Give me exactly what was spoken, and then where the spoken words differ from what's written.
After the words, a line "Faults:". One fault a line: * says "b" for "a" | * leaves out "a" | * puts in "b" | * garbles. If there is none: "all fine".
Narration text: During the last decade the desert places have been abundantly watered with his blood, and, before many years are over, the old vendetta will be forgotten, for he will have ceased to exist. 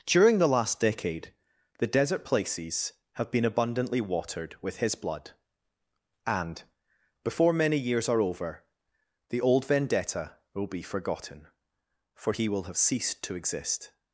During the last decade the desert places have been abundantly watered with his blood, and, before many years are over, the old vendetta will be forgotten, for he will have ceased to exist.
Faults:
all fine